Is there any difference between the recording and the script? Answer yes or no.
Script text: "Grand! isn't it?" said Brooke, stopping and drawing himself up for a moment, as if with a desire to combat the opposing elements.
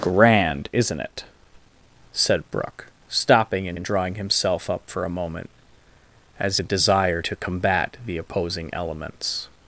yes